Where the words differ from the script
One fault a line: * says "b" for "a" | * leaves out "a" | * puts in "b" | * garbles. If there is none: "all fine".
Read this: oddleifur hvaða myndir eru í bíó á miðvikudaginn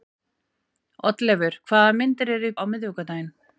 * leaves out "bíó"